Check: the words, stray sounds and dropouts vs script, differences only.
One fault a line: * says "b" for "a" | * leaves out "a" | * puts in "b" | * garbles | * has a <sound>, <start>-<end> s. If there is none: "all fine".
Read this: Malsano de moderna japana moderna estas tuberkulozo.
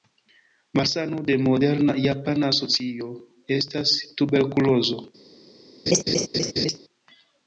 * says "socio" for "moderna"
* has a laugh, 5.9-6.8 s